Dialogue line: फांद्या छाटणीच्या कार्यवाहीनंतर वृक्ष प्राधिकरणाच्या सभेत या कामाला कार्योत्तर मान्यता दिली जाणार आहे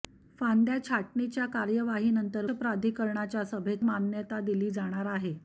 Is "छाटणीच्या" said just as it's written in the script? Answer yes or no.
yes